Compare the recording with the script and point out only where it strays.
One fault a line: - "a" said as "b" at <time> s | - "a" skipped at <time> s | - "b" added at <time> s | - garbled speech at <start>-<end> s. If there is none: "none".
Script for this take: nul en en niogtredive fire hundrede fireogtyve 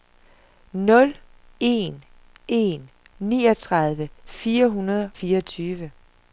none